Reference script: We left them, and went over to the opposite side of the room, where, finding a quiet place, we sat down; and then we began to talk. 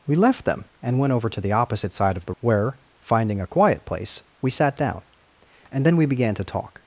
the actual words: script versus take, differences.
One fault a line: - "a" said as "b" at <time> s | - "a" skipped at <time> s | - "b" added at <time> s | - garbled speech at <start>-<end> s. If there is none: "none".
- "room" skipped at 2.3 s